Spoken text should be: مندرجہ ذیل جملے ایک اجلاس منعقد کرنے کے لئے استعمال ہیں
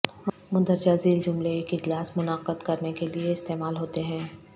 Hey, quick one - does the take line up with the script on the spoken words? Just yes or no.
no